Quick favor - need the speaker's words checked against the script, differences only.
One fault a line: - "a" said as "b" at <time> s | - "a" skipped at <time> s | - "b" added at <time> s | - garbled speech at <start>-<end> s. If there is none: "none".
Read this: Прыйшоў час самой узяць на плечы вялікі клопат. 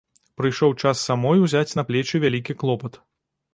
none